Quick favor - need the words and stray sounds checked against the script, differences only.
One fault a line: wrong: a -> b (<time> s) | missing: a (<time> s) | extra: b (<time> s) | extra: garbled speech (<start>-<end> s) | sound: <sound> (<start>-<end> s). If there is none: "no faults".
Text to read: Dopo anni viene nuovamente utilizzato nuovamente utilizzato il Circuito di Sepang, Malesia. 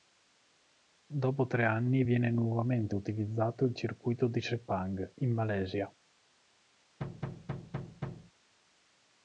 extra: tre (1.4 s)
missing: nuovamente utilizzato (3.6 s)
extra: in (5.2 s)
sound: thud (7.0-8.3 s)